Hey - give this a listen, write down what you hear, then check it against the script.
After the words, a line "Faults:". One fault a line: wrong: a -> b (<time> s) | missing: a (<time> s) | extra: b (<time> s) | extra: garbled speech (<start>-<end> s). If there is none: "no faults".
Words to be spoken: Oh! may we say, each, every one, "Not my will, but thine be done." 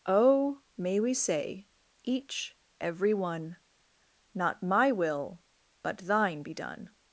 Oh! may we say, each, every one, "Not my will, but thine be done."
Faults:
no faults